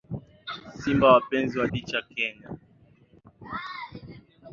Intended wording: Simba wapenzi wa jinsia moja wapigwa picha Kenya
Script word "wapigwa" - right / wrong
wrong